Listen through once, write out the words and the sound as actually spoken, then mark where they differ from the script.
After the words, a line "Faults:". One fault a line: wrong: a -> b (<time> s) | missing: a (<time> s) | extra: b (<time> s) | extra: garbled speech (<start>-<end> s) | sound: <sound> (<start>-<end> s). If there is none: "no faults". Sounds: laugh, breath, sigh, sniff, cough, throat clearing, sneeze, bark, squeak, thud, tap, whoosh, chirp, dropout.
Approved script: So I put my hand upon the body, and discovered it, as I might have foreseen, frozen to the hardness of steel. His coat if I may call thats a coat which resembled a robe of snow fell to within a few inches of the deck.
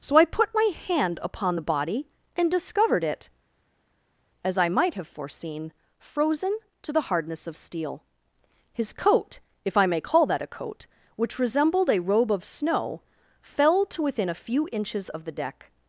So I put my hand upon the body, and discovered it, as I might have foreseen, frozen to the hardness of steel. His coat if I may call that a coat which resembled a robe of snow fell to within a few inches of the deck.
Faults:
wrong: thats -> that (10.3 s)